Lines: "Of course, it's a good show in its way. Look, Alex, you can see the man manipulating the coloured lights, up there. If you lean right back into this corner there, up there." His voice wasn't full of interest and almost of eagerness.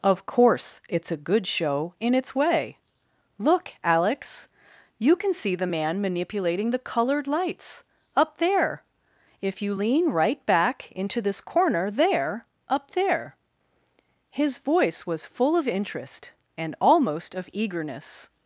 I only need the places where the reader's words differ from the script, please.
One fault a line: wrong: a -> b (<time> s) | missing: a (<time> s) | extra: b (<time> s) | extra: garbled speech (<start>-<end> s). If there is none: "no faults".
wrong: wasn't -> was (15.1 s)